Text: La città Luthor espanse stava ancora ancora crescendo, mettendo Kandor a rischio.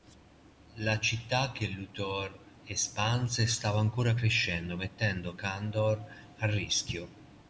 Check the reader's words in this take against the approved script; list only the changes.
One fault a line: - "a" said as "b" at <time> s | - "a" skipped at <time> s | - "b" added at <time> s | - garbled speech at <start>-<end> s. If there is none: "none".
- "che" added at 1.5 s
- "ancora" skipped at 4.2 s